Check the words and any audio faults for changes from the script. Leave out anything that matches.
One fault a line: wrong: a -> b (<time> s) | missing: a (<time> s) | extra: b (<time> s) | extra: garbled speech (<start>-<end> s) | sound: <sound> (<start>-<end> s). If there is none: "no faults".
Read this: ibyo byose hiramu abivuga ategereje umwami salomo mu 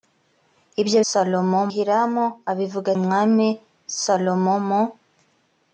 wrong: byose -> salomo (1.1 s)
missing: ategereje (2.9 s)